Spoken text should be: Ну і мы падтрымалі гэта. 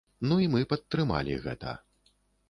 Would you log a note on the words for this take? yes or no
no